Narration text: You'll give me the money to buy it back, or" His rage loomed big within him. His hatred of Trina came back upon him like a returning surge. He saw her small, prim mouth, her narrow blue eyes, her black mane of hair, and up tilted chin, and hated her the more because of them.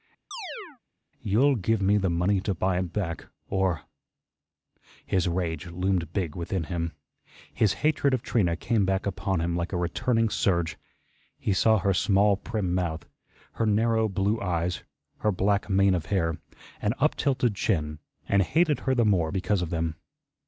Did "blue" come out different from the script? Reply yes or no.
no